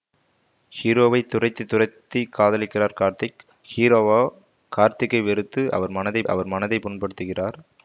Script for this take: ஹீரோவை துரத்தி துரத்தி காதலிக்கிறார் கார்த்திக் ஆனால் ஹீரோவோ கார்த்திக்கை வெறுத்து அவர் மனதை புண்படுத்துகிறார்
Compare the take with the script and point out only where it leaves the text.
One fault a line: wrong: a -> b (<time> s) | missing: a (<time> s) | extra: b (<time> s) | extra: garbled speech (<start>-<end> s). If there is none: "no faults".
missing: ஆனால் (3.4 s)
extra: அவர் மனதை (6.3 s)